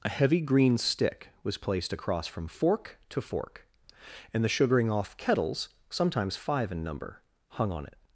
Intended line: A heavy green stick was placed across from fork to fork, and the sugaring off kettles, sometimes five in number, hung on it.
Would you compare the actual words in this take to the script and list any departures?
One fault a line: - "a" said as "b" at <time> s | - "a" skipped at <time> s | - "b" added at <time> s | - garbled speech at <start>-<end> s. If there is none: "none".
none